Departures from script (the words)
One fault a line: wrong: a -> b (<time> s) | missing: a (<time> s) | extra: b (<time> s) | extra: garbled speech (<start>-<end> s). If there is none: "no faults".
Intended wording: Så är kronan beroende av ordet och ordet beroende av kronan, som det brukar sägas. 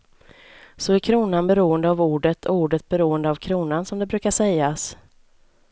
no faults